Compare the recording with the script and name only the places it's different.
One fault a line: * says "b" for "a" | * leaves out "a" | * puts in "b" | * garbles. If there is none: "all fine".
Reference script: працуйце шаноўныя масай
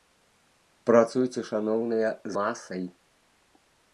all fine